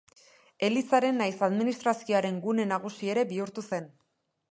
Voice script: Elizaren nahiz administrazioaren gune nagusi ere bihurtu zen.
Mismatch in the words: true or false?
false